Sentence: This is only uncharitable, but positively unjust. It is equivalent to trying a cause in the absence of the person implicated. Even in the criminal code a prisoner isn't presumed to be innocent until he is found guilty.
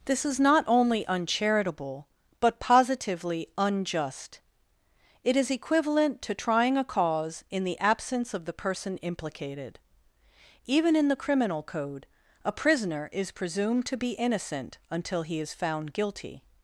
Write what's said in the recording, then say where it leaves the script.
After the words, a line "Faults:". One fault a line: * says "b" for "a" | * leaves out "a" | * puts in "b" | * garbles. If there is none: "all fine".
This is not only uncharitable, but positively unjust. It is equivalent to trying a cause in the absence of the person implicated. Even in the criminal code a prisoner is presumed to be innocent until he is found guilty.
Faults:
* puts in "not"
* says "is" for "isn't"